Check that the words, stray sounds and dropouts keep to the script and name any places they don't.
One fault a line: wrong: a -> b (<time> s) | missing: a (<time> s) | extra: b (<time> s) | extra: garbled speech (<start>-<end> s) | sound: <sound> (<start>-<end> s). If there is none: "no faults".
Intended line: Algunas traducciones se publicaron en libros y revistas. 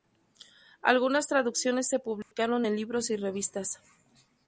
sound: dropout (2.2-2.3 s)